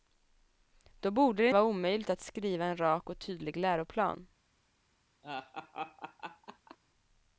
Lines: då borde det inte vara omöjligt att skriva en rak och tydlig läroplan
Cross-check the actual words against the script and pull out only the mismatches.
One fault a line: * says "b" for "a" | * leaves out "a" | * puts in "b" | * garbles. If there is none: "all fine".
* leaves out "inte"